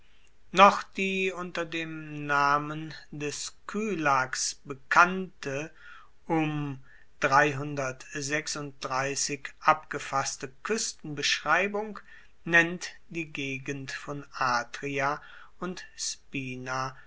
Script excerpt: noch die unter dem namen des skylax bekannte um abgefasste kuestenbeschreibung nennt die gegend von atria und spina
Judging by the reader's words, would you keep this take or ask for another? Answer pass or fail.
pass